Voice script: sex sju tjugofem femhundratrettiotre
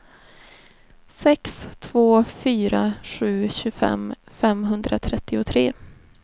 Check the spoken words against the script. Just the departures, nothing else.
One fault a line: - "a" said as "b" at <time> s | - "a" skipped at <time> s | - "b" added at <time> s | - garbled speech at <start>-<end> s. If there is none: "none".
- "två fyra" added at 1.8 s